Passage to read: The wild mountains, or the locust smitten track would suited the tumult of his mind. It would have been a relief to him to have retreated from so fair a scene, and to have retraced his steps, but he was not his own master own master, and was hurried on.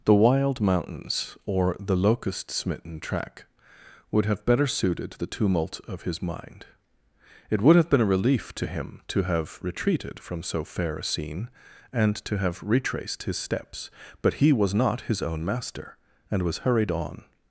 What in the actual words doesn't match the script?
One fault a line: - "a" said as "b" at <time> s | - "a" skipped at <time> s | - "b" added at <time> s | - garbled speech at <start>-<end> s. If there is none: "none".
- "have better" added at 4.2 s
- "own master" skipped at 16.0 s